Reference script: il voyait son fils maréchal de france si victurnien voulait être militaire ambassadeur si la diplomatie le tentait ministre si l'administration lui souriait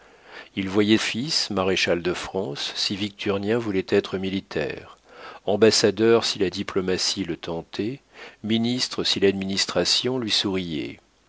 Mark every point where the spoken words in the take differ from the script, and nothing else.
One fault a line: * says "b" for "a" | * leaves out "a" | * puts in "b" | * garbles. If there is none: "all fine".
* leaves out "son"